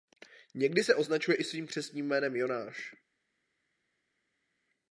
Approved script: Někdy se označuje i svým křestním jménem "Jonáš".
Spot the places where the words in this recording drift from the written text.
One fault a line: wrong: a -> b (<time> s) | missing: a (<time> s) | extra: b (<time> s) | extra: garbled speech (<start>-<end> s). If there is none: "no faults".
no faults